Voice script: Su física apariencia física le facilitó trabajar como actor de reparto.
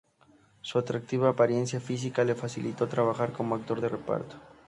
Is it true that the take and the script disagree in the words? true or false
true